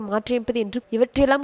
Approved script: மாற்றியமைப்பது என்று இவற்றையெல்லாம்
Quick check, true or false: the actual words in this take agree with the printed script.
true